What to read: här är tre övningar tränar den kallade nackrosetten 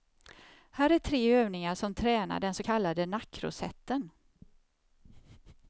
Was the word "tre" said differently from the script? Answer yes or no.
no